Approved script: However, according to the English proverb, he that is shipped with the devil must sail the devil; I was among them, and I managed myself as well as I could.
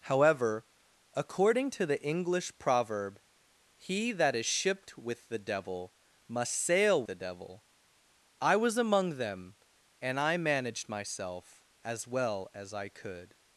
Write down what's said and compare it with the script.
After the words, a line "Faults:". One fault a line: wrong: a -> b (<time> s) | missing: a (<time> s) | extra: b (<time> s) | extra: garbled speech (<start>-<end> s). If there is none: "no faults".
However, according to the English proverb, he that is shipped with the devil must sail the devil; I was among them, and I managed myself as well as I could.
Faults:
no faults